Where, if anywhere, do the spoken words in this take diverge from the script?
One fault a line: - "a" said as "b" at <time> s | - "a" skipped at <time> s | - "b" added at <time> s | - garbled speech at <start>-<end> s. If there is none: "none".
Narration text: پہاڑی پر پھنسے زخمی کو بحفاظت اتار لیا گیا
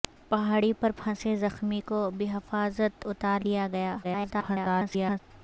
- garbled speech at 4.0-5.2 s